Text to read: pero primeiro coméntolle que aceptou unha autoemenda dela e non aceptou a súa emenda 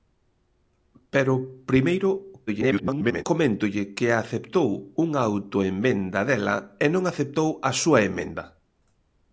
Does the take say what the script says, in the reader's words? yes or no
no